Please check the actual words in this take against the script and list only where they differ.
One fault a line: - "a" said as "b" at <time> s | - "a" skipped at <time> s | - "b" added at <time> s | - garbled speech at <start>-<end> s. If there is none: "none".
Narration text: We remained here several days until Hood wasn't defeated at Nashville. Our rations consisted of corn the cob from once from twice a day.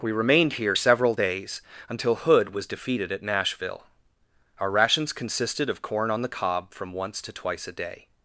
- "wasn't" said as "was" at 2.5 s
- "on" added at 6.1 s
- "from" said as "to" at 7.2 s